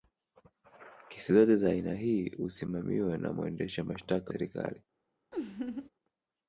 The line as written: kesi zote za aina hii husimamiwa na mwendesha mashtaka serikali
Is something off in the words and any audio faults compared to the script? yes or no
yes